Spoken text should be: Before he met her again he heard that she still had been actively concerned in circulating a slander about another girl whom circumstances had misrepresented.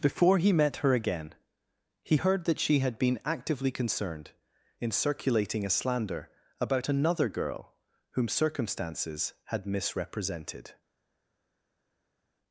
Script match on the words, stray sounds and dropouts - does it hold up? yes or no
no